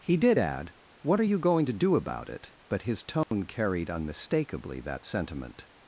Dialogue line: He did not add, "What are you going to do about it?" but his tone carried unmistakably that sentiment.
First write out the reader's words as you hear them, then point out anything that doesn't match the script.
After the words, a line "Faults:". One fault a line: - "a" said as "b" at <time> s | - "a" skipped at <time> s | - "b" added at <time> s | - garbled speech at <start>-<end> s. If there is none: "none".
He did add, "What are you going to do about it?" but his tone carried unmistakably that sentiment.
Faults:
- "not" skipped at 0.4 s